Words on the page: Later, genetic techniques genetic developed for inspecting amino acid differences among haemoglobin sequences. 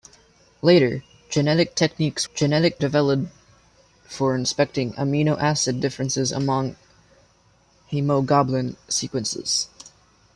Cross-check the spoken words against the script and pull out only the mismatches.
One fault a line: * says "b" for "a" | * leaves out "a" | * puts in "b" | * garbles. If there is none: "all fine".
all fine